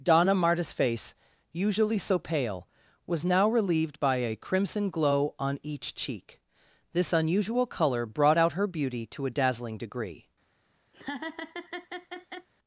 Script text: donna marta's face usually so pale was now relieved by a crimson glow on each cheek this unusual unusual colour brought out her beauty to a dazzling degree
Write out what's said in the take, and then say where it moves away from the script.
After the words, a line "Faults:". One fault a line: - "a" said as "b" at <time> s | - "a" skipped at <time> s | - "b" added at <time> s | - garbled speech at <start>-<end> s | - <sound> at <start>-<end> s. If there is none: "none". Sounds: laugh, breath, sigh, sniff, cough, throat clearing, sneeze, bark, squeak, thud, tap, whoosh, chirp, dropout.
donna marta's face usually so pale was now relieved by a crimson glow on each cheek this unusual colour brought out her beauty to a dazzling degree
Faults:
- "unusual" skipped at 7.7 s
- laugh at 10.9-12.5 s